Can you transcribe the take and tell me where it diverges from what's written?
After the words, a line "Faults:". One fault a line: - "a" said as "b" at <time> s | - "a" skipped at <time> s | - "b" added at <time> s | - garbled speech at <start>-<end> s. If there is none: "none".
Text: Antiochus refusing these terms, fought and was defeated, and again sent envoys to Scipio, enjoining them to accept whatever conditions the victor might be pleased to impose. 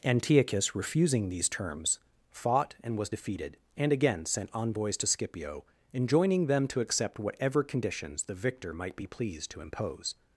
Antiochus refusing these terms, fought and was defeated, and again sent envoys to Scipio, enjoining them to accept whatever conditions the victor might be pleased to impose.
Faults:
none